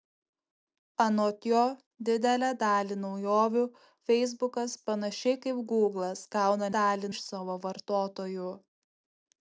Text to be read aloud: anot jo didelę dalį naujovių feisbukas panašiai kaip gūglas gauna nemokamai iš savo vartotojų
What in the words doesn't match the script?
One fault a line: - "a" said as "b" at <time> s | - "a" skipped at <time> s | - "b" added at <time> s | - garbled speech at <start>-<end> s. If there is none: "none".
- "nemokamai" said as "dalį" at 6.8 s